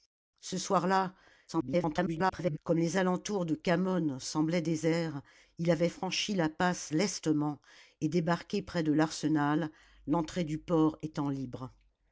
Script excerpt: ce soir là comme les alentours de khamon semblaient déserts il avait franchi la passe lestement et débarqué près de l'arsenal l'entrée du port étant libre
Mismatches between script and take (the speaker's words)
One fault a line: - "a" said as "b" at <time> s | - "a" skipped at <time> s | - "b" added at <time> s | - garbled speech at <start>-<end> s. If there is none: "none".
- garbled speech at 1.5-2.6 s